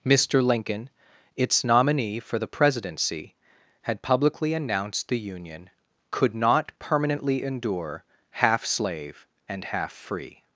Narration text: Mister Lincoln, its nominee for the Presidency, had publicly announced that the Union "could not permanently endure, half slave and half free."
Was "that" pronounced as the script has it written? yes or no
no